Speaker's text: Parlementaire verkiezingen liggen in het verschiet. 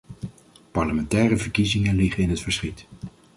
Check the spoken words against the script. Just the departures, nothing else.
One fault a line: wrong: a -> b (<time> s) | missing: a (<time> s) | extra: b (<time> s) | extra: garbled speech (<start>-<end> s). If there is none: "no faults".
no faults